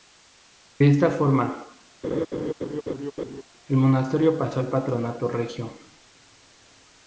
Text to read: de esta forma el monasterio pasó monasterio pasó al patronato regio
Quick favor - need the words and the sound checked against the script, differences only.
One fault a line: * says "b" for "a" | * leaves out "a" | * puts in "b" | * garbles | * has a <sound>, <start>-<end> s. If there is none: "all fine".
* has a laugh, 2.0-3.4 s
* leaves out "monasterio pasó"